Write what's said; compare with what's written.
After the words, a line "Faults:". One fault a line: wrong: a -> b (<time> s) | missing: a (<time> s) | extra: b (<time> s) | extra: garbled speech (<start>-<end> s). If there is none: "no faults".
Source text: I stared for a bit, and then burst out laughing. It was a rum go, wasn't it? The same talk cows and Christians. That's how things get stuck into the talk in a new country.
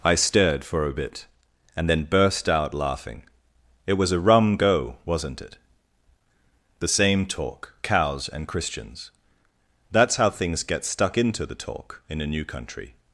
I stared for a bit, and then burst out laughing. It was a rum go, wasn't it? The same talk cows and Christians. That's how things get stuck into the talk in a new country.
Faults:
no faults